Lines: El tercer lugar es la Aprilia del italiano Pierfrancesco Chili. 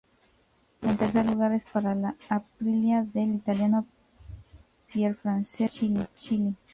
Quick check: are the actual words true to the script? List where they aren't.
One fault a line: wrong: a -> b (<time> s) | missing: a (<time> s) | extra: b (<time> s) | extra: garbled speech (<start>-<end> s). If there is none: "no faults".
extra: para (1.7 s)